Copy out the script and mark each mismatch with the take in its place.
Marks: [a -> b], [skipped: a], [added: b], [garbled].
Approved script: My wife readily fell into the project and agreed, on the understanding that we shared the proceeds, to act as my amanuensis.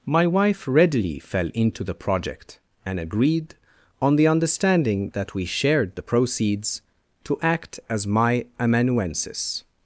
My wife readily fell into the project and agreed, on the understanding that we shared the proceeds, to act as my amanuensis.